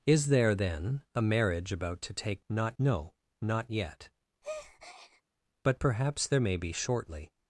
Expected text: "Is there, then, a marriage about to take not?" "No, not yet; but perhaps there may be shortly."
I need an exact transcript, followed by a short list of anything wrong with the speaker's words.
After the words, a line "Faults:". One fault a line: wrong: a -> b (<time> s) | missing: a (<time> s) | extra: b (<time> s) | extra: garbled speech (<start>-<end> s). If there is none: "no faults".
"Is there, then, a marriage about to take not?" "No, not yet; but perhaps there may be shortly."
Faults:
no faults